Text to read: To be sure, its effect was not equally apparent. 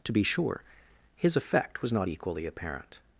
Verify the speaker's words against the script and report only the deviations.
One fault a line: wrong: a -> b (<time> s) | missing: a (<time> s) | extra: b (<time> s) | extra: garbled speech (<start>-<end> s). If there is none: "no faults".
wrong: its -> his (1.1 s)